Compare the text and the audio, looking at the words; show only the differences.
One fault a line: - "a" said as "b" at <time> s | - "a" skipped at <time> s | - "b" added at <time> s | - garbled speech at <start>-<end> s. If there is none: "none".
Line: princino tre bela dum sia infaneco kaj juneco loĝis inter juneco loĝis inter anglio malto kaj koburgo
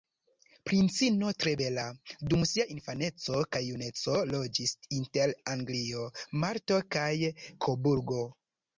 - "juneco loĝis inter" skipped at 5.4 s